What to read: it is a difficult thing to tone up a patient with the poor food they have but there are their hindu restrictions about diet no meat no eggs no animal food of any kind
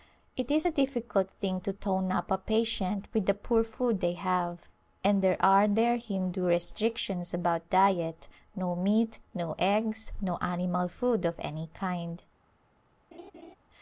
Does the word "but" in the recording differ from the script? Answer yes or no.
yes